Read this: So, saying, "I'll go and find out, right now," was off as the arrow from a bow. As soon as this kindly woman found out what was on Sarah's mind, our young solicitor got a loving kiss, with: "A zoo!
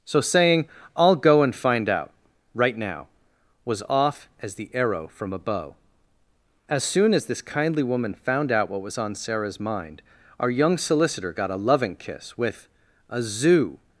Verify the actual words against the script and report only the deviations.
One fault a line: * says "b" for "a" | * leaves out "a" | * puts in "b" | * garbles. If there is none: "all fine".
all fine